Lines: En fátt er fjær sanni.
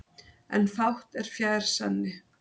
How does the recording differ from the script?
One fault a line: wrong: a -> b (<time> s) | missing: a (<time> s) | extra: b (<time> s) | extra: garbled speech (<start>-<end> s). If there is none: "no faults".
no faults